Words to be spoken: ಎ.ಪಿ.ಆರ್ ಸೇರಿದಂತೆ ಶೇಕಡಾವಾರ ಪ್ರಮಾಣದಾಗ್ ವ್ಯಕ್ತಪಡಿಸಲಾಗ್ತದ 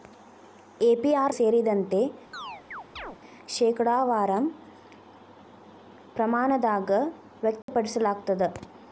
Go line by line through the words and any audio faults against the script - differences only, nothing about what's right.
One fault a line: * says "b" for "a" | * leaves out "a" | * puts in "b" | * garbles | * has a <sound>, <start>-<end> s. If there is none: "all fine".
* has a chirp, 2.3-3.2 s
* has a dropout, 7.6-7.7 s